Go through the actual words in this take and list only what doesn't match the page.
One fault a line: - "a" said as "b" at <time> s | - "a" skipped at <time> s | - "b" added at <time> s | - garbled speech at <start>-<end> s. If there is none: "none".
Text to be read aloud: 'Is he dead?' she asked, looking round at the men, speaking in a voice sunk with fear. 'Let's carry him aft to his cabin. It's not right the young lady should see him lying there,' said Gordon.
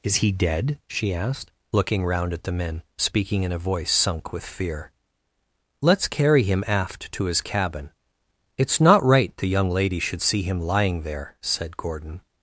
none